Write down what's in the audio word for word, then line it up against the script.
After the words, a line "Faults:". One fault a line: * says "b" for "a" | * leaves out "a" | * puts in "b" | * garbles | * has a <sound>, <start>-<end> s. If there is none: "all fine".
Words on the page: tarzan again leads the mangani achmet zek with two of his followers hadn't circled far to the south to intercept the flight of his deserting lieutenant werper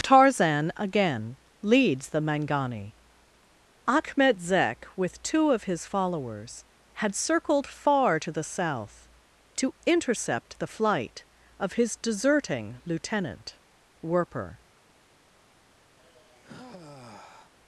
tarzan again leads the mangani achmet zek with two of his followers had circled far to the south to intercept the flight of his deserting lieutenant werper
Faults:
* says "had" for "hadn't"
* has a sigh, 16.0-17.5 s